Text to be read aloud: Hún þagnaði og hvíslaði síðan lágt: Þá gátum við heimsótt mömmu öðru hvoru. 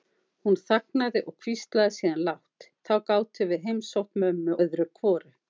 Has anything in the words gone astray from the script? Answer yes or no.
no